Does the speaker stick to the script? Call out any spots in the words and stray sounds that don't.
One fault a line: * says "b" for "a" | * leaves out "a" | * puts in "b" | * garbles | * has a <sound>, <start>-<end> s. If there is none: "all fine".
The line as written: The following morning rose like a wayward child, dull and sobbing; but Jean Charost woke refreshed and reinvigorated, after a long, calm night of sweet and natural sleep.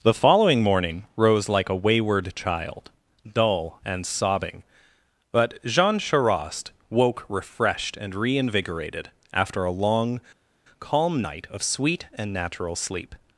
all fine